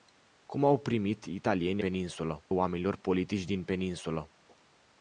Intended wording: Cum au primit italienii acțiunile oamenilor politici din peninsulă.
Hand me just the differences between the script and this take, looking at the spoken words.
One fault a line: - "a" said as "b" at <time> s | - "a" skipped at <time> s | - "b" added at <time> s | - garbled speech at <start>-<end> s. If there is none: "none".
- "acțiunile" said as "peninsulă" at 1.8 s